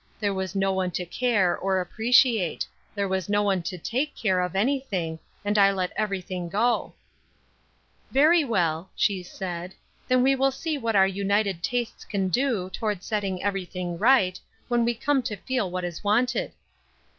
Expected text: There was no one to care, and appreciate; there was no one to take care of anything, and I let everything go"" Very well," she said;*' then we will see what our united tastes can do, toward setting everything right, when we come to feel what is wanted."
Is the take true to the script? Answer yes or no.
no